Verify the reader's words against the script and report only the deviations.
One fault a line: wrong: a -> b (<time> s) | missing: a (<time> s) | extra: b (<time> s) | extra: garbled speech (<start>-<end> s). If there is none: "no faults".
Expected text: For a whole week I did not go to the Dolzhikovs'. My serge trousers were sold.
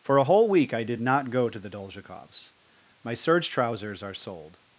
wrong: were -> are (4.0 s)